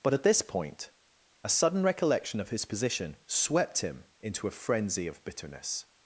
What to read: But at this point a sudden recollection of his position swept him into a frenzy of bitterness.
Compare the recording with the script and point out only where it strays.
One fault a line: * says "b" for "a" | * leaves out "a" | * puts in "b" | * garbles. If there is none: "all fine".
all fine